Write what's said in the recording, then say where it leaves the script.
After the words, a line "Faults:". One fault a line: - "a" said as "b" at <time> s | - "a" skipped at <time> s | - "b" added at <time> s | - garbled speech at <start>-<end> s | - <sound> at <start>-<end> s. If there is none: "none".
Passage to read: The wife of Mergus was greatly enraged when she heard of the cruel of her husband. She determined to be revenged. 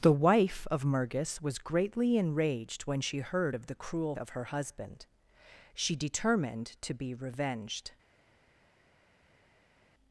The wife of Mergus was greatly enraged when she heard of the cruel of her husband. She determined to be revenged.
Faults:
none